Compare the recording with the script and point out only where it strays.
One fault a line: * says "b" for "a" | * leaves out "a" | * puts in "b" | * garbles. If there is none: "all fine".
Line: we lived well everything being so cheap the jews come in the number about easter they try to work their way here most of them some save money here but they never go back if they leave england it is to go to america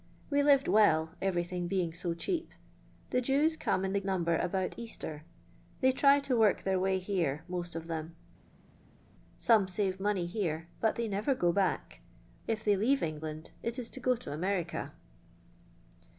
all fine